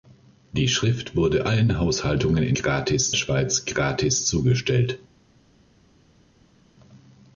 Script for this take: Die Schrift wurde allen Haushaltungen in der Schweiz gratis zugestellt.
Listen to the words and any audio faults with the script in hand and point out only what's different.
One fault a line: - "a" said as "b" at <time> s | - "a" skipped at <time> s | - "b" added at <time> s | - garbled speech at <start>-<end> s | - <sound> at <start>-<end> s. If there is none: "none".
- "der" said as "gratis" at 2.5 s